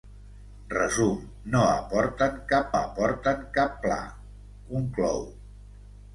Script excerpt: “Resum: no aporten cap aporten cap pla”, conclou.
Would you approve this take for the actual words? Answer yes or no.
yes